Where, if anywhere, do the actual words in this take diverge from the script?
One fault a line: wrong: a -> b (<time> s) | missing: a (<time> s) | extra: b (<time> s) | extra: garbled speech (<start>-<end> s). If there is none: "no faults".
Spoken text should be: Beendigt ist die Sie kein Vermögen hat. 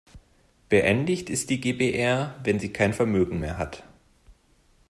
extra: GbR wenn (1.6 s)
extra: mehr (3.4 s)